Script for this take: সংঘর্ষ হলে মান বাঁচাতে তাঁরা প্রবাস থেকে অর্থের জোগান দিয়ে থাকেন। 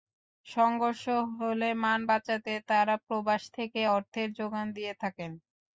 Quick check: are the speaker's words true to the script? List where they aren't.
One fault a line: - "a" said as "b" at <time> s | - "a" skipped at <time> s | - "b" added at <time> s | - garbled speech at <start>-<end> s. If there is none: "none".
none